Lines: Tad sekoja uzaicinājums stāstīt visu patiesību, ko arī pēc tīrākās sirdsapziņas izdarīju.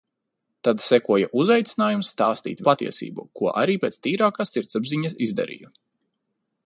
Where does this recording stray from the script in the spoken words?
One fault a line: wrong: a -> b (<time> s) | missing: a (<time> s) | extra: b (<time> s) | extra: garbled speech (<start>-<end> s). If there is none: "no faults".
missing: visu (2.6 s)